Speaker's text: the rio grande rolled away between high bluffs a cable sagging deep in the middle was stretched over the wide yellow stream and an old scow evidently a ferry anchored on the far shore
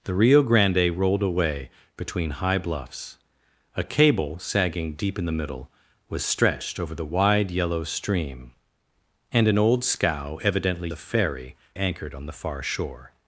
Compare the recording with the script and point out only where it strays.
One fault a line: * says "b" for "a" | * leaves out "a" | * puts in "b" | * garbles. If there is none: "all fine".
all fine